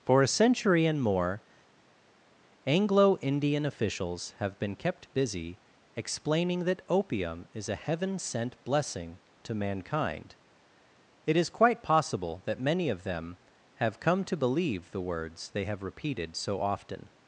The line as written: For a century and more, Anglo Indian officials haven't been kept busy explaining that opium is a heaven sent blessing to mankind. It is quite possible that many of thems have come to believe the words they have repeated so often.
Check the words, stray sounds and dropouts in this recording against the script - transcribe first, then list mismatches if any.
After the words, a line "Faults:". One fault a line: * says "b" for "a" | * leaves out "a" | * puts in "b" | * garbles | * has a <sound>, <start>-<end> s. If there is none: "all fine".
For a century and more, Anglo Indian officials have been kept busy explaining that opium is a heaven sent blessing to mankind. It is quite possible that many of them have come to believe the words they have repeated so often.
Faults:
* says "have" for "haven't"
* says "them" for "thems"